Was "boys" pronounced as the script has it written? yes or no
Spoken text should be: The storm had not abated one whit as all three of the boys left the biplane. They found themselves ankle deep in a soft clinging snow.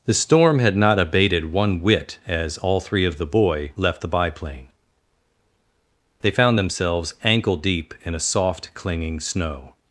no